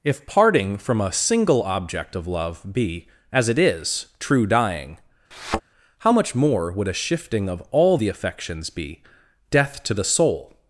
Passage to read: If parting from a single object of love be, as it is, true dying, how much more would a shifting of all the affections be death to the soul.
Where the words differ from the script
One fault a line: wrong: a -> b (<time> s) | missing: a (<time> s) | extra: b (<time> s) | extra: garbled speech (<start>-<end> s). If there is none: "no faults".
no faults